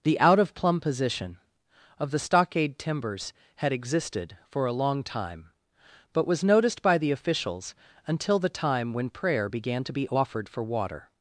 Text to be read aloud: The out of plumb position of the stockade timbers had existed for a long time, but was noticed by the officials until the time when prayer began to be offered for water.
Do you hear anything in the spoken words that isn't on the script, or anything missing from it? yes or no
no